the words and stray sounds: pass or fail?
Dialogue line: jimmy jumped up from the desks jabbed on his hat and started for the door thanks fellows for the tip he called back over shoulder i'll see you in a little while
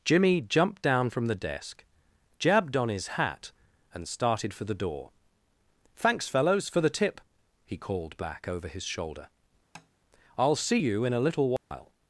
fail